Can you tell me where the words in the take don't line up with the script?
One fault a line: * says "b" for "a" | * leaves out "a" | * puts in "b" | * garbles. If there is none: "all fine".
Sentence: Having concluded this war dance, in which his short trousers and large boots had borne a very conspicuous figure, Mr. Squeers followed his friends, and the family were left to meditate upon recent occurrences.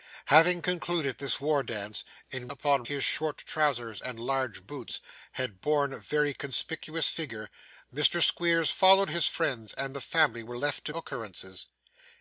* says "upon" for "which"
* leaves out "meditate upon recent"